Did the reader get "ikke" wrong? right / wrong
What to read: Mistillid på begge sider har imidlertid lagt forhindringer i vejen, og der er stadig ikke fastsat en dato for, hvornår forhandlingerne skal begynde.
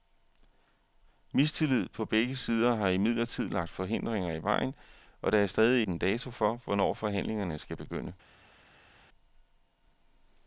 wrong